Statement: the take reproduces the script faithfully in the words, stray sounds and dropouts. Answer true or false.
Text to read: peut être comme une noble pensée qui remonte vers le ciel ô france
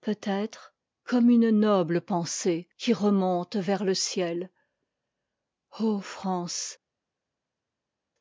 true